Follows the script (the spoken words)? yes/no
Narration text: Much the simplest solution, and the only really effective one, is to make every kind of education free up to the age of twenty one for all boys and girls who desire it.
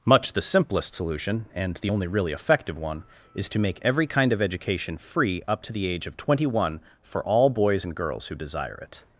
yes